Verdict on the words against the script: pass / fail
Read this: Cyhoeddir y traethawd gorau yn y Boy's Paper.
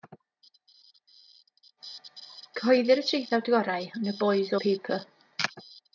pass